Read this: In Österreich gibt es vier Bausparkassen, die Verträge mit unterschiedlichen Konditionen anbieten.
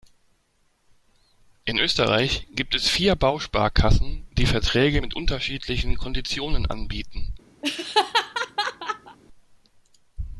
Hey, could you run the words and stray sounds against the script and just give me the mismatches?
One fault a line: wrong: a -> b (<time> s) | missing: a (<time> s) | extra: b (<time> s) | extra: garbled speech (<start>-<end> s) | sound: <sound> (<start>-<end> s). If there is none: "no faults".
sound: laugh (7.6-9.2 s)